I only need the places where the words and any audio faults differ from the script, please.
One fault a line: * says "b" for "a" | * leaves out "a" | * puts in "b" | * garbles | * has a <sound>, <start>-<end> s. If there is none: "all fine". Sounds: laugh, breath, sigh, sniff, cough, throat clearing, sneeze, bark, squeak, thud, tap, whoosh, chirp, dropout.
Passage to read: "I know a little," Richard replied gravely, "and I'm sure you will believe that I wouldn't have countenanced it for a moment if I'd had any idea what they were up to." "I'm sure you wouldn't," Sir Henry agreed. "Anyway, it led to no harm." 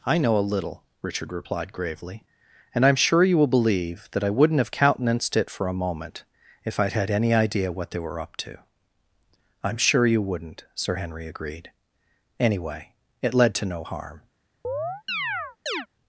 * has a chirp, 14.6-15.9 s